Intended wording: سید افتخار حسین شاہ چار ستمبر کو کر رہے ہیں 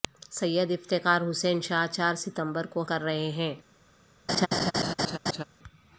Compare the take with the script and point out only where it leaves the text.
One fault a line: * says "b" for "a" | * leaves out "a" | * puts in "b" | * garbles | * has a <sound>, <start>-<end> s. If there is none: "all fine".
* has a laugh, 4.3-5.4 s